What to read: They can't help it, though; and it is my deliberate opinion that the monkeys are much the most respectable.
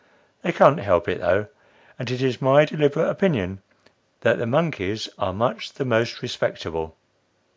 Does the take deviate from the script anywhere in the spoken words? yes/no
no